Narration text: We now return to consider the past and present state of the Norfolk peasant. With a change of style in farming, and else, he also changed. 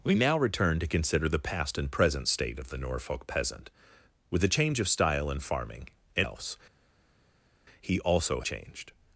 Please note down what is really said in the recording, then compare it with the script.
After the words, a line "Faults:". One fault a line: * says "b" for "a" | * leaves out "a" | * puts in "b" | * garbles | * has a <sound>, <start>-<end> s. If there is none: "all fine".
We now return to consider the past and present state of the Norfolk peasant. With a change of style in farming, and else, he also changed.
Faults:
all fine